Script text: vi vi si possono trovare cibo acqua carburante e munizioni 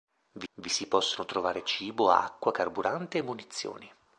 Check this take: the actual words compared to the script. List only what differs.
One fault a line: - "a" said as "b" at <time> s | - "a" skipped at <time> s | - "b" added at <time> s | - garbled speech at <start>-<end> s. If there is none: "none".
none